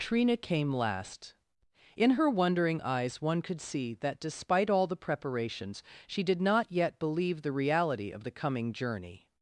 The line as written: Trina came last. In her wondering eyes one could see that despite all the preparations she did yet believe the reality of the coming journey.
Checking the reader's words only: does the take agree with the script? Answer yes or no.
no